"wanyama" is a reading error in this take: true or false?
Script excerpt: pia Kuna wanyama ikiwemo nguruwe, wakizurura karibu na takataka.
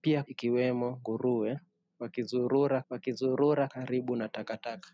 true